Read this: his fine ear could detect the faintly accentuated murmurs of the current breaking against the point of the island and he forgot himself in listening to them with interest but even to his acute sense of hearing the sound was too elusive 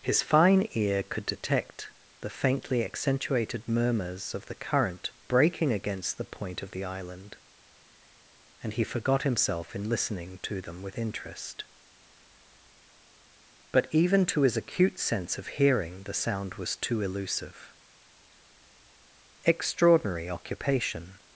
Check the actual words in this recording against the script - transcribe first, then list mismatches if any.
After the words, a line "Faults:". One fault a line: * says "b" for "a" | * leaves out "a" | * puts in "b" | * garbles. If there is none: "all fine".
his fine ear could detect the faintly accentuated murmurs of the current breaking against the point of the island and he forgot himself in listening to them with interest but even to his acute sense of hearing the sound was too elusive extraordinary occupation
Faults:
* puts in "extraordinary occupation"